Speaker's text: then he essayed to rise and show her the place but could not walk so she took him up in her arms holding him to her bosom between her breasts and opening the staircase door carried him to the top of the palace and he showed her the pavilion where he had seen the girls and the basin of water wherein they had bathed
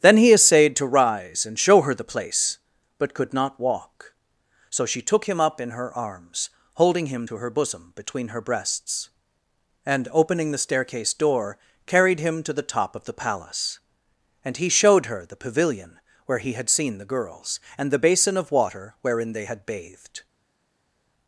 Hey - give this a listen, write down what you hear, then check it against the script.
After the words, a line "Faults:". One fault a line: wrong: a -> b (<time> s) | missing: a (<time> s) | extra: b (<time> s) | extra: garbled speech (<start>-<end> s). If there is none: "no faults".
then he essayed to rise and show her the place but could not walk so she took him up in her arms holding him to her bosom between her breasts and opening the staircase door carried him to the top of the palace and he showed her the pavilion where he had seen the girls and the basin of water wherein they had bathed
Faults:
no faults